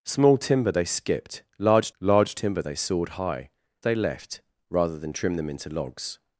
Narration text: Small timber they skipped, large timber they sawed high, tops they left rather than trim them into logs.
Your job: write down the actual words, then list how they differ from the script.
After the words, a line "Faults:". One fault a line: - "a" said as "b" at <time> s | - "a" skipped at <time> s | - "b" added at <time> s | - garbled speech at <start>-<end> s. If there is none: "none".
Small timber they skipped, large large timber they sawed high, they left rather than trim them into logs.
Faults:
- "large" added at 2.0 s
- "tops" skipped at 3.5 s